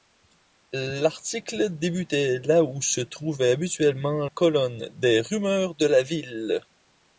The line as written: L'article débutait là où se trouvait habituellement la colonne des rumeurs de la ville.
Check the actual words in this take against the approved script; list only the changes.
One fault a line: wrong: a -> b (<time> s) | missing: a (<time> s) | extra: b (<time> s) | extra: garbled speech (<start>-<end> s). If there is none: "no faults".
missing: la (4.3 s)